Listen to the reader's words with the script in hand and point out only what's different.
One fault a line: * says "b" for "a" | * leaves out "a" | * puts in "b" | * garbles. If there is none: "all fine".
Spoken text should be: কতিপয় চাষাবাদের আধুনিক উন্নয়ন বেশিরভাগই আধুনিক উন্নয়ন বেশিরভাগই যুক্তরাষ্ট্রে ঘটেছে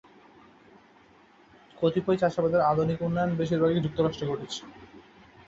* leaves out "আধুনিক উন্নয়ন বেশিরভাগই"